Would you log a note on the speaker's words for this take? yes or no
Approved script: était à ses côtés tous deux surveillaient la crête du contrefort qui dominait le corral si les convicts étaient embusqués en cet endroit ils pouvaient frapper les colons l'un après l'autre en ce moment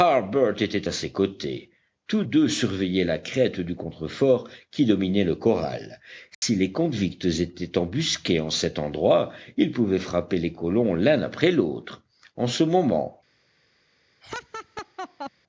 no